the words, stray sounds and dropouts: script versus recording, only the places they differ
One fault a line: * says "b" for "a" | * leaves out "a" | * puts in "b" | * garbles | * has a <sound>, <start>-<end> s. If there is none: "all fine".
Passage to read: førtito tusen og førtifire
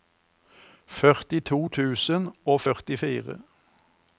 all fine